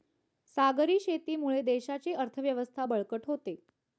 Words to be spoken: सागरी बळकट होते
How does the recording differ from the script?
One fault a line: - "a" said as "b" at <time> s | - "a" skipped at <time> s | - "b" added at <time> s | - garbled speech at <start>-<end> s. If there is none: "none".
- "शेतीमुळे देशाची अर्थव्यवस्था" added at 1.0 s